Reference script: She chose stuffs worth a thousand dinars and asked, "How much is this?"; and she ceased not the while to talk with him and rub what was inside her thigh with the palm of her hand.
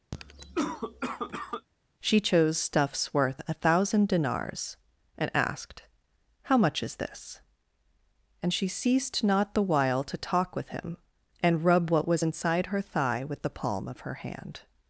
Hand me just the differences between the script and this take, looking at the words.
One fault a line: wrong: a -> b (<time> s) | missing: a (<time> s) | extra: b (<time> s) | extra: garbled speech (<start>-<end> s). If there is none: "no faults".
no faults